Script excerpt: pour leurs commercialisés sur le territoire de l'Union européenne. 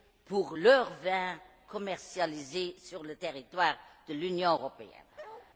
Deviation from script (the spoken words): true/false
true